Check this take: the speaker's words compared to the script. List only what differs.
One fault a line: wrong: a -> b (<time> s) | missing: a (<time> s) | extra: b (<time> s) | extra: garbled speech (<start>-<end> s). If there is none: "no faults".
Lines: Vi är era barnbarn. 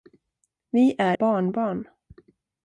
missing: era (1.2 s)